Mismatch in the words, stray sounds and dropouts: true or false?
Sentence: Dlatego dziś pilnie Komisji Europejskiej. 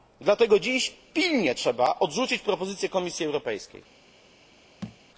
true